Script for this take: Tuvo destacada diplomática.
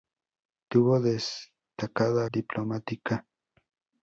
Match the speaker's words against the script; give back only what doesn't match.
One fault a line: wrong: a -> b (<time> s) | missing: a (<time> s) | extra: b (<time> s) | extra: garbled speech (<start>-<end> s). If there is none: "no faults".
no faults